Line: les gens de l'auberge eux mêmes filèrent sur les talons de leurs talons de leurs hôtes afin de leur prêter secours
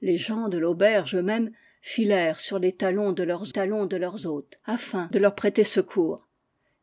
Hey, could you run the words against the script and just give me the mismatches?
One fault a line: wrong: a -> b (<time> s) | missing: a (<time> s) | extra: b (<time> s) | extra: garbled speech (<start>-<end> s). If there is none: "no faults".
no faults